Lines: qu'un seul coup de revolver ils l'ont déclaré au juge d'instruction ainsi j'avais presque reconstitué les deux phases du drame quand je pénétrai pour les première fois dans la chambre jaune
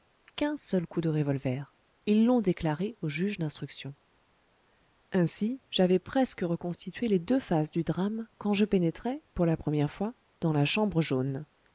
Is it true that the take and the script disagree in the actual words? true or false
true